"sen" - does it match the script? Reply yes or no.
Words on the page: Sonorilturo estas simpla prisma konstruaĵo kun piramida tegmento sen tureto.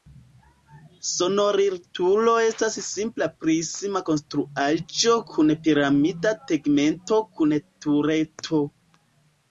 no